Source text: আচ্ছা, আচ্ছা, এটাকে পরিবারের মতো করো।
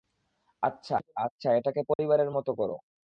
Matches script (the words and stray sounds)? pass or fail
fail